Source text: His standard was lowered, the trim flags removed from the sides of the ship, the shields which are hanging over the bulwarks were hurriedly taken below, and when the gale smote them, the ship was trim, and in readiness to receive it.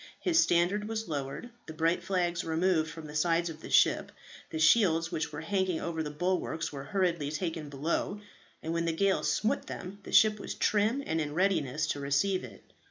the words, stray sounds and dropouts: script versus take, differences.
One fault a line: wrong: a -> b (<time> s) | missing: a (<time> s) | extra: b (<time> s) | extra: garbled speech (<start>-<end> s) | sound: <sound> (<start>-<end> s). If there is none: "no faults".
wrong: trim -> bright (1.8 s)
wrong: are -> were (5.3 s)